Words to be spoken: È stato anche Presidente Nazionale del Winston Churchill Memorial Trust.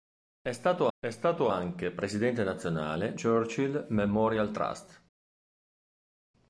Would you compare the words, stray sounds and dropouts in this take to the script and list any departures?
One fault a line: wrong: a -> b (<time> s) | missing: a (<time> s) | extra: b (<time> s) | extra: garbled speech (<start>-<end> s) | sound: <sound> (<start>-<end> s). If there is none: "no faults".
extra: è stato (1.0 s)
missing: del Winston (3.2 s)